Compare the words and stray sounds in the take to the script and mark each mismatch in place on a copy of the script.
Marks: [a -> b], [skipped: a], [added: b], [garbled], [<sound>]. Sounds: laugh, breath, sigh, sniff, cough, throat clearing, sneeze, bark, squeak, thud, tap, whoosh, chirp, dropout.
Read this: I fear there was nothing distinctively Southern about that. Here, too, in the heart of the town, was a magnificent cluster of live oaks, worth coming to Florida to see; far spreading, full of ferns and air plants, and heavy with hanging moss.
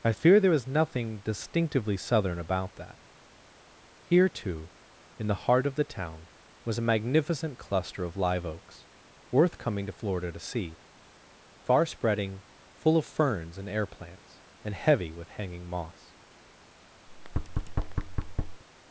I fear there was nothing distinctively Southern about that. Here, too, in the heart of the town, was a magnificent cluster of live oaks, worth coming to Florida to see; far spreading, full of ferns and air plants, and heavy with hanging moss. [thud]